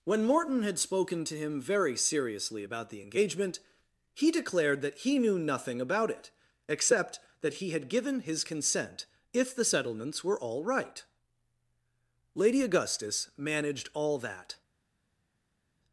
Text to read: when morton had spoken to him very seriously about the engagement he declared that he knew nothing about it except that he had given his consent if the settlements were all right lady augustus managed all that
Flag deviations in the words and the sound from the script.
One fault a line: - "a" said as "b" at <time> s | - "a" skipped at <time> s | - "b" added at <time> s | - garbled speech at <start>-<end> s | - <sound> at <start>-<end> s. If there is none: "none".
none